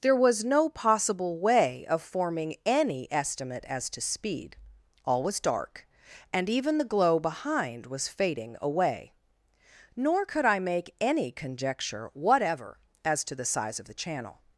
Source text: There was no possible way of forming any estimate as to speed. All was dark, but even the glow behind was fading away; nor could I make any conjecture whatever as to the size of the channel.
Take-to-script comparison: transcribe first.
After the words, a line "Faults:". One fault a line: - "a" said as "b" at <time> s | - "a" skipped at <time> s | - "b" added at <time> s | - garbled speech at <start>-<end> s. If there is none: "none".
There was no possible way of forming any estimate as to speed. All was dark, and even the glow behind was fading away; nor could I make any conjecture whatever as to the size of the channel.
Faults:
- "but" said as "and" at 6.3 s